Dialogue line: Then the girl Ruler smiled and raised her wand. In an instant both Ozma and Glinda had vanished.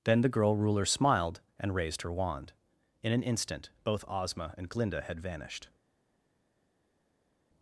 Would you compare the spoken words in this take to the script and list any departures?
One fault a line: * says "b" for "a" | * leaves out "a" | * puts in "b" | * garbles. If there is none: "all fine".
all fine